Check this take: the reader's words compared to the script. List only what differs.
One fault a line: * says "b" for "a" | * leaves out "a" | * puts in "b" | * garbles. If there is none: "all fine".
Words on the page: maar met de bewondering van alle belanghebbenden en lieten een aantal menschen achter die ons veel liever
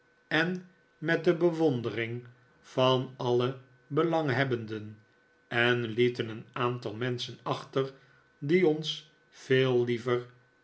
* says "en" for "maar"